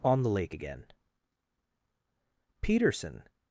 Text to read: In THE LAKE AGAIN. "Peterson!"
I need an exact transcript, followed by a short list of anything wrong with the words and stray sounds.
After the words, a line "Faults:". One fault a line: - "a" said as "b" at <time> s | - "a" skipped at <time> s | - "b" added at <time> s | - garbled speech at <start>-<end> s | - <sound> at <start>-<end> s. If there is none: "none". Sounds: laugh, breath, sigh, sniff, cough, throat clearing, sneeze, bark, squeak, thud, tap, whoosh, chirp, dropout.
ON THE LAKE AGAIN. "Peterson!"
Faults:
- "In" said as "ON" at 0.0 s